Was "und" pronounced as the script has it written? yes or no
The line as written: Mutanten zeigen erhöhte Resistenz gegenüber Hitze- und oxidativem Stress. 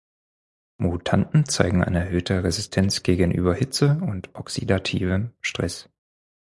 yes